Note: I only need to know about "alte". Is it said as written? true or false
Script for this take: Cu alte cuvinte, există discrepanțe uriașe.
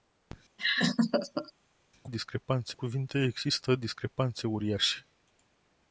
false